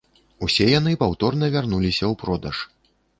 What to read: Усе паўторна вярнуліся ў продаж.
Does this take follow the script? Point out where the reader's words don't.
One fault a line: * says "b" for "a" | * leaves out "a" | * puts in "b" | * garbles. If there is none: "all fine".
* puts in "яны"